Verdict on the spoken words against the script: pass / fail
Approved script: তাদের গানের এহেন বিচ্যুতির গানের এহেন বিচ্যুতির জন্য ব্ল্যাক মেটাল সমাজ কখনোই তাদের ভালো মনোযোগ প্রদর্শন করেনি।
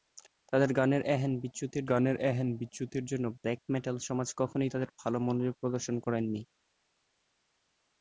pass